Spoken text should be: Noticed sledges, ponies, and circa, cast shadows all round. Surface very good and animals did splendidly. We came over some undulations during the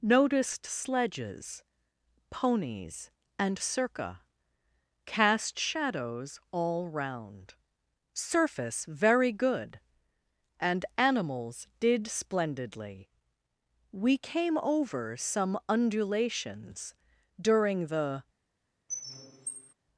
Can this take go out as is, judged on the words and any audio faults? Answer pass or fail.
fail